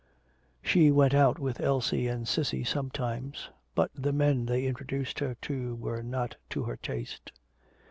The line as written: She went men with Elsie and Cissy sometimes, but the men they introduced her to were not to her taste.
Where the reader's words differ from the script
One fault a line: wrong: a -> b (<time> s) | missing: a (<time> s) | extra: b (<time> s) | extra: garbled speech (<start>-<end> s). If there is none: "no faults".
wrong: men -> out (1.1 s)